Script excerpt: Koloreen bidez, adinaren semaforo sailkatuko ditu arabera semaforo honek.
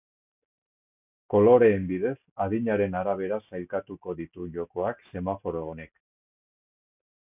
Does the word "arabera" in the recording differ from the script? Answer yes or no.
yes